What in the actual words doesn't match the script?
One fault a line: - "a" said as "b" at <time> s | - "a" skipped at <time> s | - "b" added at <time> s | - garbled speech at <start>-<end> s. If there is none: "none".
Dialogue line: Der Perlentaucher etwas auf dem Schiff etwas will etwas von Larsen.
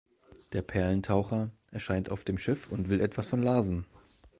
- "etwas" said as "erscheint" at 1.7 s
- "etwas" said as "und" at 2.7 s